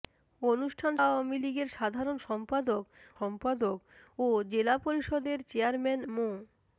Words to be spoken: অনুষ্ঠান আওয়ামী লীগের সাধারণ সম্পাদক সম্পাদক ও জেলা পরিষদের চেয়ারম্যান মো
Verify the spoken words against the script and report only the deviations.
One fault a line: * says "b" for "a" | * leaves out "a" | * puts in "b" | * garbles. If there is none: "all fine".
all fine